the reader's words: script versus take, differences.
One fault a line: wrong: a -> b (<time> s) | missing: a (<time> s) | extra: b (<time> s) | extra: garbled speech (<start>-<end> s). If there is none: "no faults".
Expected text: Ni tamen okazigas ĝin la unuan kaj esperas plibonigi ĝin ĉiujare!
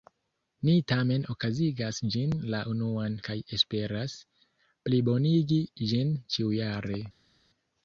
no faults